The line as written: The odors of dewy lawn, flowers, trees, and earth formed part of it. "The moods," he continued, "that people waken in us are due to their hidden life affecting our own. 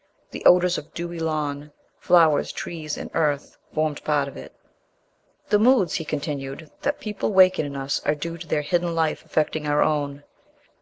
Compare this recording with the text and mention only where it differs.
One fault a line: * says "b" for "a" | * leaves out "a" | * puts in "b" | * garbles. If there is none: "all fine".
all fine